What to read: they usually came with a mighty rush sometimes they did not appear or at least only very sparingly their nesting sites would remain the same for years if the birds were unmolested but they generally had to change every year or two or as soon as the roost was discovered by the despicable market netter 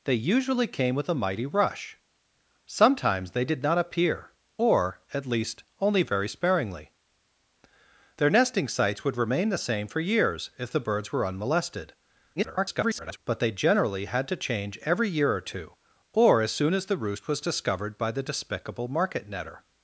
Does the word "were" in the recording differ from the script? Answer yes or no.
no